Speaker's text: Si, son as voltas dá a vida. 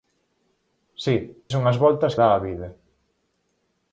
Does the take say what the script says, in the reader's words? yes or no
yes